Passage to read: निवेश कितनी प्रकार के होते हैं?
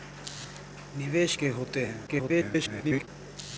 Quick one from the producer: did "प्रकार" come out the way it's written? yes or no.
no